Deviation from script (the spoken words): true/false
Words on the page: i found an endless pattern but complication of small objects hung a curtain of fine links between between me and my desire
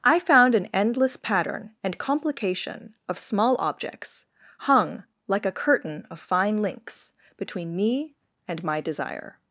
true